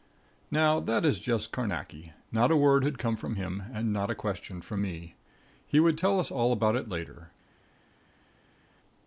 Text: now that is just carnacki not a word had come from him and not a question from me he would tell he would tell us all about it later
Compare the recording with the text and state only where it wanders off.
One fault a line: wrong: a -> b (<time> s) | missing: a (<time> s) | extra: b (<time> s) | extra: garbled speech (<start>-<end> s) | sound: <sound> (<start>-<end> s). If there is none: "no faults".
missing: he would tell (6.2 s)